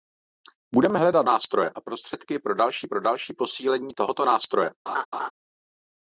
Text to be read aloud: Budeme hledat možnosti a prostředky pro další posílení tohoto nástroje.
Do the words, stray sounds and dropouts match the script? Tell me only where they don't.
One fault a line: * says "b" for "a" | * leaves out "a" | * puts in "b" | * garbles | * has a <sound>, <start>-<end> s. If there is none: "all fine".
* says "nástroje" for "možnosti"
* puts in "pro další"
* has a laugh, 4.9-5.3 s